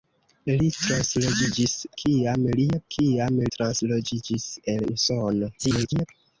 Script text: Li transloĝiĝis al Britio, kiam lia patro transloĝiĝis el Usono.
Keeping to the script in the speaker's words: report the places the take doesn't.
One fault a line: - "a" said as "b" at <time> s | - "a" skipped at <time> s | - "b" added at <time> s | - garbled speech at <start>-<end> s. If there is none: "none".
- "al Britio" skipped at 1.8 s
- "patro" said as "kiam" at 3.0 s
- garbled speech at 5.6-6.1 s